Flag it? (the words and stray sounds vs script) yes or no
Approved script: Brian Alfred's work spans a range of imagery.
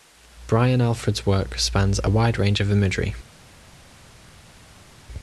yes